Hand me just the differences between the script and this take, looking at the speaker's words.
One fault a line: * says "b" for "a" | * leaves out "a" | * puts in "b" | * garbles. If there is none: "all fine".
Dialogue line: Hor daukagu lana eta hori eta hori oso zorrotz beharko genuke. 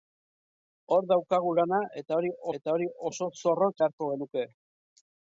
all fine